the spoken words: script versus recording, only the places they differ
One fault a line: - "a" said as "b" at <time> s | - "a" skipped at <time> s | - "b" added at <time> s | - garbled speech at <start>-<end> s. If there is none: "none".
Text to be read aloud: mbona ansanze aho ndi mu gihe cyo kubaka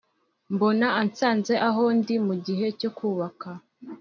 none